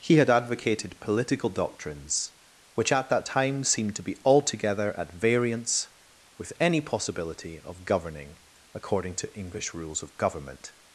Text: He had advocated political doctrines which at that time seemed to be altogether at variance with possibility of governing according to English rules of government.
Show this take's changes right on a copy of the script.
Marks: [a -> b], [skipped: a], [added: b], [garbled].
He had advocated political doctrines which at that time seemed to be altogether at variance with [added: any] possibility of governing according to English rules of government.